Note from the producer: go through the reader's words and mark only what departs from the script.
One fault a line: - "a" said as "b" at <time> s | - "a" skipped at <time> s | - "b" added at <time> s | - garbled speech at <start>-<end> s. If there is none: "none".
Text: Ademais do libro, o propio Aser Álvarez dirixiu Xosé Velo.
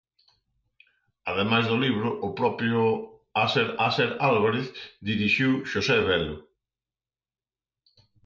- "Aser" added at 3.9 s